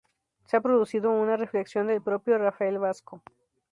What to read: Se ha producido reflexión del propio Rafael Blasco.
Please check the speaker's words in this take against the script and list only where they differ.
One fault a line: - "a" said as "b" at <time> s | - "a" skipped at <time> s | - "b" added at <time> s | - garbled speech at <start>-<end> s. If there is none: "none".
- "una" added at 1.1 s